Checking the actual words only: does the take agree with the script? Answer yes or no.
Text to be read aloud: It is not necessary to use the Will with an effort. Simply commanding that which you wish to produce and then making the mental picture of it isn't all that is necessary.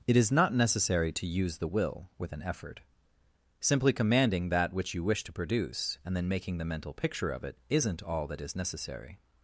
yes